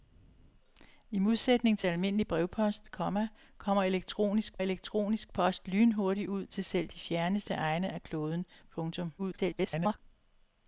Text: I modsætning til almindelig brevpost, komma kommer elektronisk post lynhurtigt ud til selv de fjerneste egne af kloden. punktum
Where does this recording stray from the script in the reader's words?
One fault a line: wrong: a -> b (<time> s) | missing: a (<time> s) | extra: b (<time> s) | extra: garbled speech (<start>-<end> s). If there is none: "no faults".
extra: elektronisk (4.6 s)
extra: garbled speech (9.2-10.0 s)